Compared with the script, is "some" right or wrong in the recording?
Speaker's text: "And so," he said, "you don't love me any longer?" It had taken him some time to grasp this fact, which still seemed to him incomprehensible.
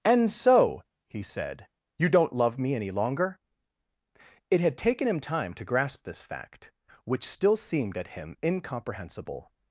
wrong